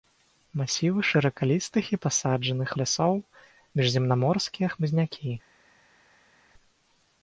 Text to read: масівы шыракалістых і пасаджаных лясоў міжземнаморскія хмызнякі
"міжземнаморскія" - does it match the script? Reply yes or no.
yes